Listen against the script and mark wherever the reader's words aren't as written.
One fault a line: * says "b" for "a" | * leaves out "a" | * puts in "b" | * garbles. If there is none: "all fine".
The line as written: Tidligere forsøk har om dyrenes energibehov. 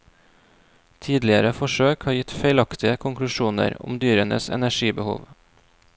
* puts in "gitt feilaktige konklusjoner"